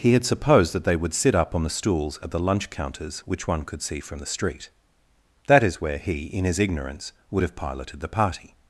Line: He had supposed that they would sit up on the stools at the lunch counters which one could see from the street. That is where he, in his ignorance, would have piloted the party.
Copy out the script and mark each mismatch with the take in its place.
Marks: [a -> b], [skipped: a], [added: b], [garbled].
He had supposed that they would sit up on the stools at the lunch counters which one could see from the street. That is where he, in his ignorance, would have piloted the party.